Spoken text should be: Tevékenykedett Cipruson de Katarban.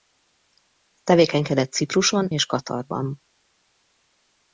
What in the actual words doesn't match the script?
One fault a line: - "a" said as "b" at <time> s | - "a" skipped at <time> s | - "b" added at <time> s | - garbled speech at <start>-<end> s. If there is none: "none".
- "de" said as "és" at 2.3 s